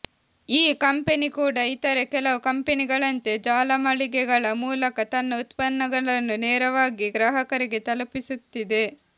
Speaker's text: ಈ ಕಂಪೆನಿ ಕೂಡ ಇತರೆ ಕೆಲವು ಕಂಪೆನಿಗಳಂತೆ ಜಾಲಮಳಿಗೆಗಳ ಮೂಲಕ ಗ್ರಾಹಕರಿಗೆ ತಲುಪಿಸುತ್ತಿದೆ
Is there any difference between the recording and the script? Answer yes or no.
yes